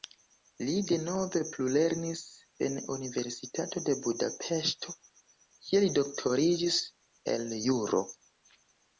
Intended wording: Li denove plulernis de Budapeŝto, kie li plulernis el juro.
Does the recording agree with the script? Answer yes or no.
no